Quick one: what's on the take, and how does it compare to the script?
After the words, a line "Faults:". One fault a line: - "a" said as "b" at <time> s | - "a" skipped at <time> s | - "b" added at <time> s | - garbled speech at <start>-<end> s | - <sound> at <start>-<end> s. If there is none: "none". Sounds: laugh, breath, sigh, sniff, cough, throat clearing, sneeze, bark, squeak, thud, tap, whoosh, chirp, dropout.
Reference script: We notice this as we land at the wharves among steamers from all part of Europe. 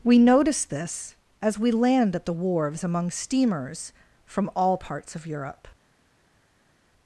We notice this as we land at the wharves among steamers from all parts of Europe.
Faults:
- "part" said as "parts" at 4.8 s